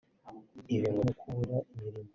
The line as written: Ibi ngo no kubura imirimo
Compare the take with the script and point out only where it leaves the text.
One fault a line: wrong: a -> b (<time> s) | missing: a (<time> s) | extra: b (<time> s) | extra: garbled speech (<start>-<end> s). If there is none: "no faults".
no faults